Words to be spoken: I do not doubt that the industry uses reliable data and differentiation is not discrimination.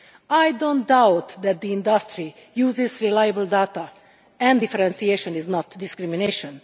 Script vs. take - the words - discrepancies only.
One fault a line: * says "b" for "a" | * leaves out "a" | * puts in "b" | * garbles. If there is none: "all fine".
all fine